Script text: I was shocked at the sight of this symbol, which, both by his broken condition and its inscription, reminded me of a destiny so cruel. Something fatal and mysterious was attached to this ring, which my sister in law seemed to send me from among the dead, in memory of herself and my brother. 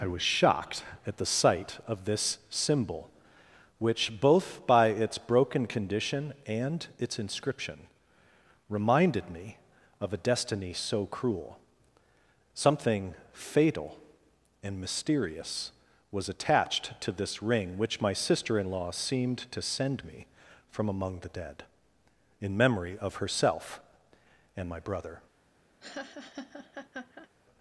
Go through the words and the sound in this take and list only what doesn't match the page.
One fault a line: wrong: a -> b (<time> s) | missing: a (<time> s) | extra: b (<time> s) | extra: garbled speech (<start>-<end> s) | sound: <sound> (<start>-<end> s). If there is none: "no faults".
wrong: his -> its (4.9 s)
sound: laugh (25.8-27.3 s)